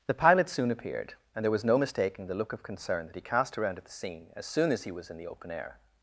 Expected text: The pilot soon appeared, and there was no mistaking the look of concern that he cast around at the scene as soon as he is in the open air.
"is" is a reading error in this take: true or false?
true